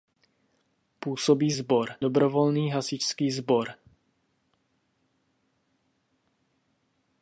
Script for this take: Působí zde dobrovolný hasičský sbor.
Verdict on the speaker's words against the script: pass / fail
fail